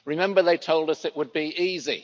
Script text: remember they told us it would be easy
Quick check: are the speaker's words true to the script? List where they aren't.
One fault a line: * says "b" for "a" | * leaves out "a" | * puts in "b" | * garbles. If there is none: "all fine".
all fine